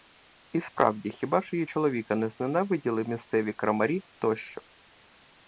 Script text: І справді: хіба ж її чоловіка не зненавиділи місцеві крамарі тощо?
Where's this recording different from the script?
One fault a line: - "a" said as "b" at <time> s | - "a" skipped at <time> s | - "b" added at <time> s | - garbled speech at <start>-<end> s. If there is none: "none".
none